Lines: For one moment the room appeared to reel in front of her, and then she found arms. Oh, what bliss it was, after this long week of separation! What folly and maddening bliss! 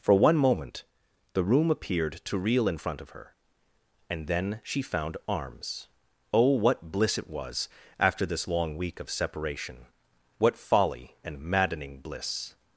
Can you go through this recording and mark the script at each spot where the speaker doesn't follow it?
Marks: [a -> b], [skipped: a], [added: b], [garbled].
For one moment the room appeared to reel in front of her, and then she found arms. Oh, what bliss it was, after this long week of separation! What folly and maddening bliss!